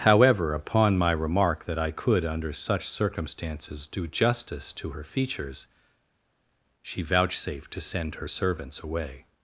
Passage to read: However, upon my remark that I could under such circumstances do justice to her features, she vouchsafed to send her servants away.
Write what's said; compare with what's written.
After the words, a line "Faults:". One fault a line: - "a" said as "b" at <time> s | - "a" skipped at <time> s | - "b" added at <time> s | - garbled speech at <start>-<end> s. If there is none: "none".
However, upon my remark that I could under such circumstances do justice to her features, she vouchsafed to send her servants away.
Faults:
none